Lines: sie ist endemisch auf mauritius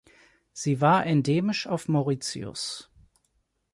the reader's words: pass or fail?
fail